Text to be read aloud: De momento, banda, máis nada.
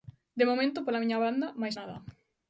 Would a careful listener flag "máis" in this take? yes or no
no